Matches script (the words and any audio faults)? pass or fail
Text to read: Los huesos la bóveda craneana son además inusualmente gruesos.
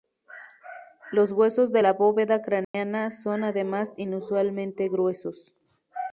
fail